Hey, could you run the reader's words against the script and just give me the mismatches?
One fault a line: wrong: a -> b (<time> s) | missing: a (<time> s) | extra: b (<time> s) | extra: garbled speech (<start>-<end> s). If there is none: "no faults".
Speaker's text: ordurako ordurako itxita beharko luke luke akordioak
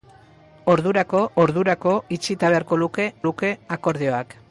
no faults